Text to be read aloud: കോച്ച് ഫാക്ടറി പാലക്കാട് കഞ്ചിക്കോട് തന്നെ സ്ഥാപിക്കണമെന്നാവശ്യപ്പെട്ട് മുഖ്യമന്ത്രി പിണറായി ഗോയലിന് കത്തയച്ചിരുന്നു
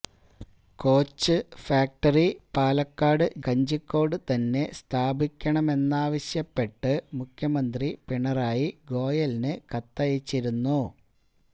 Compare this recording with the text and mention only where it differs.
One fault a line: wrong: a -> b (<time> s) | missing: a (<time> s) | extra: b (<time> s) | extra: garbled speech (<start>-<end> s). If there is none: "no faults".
no faults